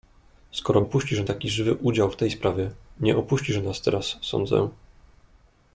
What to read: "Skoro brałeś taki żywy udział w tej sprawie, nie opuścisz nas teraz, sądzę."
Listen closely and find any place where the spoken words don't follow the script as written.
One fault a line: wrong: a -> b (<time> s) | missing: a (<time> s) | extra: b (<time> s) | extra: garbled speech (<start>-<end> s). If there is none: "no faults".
wrong: brałeś -> opuścisz (0.8 s)